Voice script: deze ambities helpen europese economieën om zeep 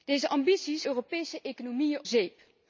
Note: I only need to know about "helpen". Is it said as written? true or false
false